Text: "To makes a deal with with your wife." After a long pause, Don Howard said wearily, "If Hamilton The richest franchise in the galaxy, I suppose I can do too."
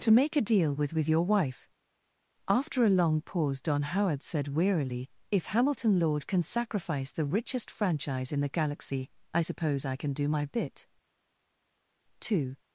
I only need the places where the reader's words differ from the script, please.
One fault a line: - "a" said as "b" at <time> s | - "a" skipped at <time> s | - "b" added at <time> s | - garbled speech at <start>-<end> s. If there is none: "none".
- "makes" said as "make" at 0.1 s
- "Lord can sacrifice" added at 6.0 s
- "my bit" added at 10.3 s